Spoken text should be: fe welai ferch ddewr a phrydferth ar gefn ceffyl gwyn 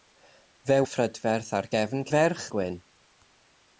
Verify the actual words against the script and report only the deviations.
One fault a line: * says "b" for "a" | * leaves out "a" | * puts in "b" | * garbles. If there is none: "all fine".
* leaves out "welai ferch ddewr"
* says "ferch" for "ceffyl"